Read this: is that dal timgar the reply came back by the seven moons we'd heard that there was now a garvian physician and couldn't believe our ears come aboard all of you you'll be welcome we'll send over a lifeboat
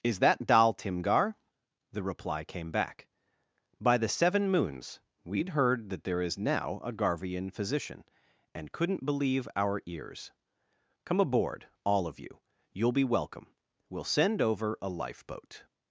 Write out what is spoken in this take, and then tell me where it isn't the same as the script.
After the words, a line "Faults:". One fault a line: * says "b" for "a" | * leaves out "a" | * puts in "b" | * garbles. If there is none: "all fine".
is that dal timgar the reply came back by the seven moons we'd heard that there is now a garvian physician and couldn't believe our ears come aboard all of you you'll be welcome we'll send over a lifeboat
Faults:
* says "is" for "was"